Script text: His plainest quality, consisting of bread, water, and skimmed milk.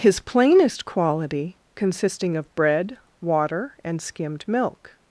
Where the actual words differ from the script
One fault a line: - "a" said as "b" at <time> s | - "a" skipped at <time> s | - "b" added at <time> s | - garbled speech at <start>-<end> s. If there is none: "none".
none